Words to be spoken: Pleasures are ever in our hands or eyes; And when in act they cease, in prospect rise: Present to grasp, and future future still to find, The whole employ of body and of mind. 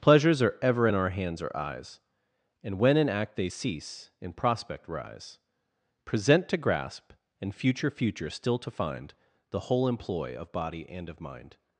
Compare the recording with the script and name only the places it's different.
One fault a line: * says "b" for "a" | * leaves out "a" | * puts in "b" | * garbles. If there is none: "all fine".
all fine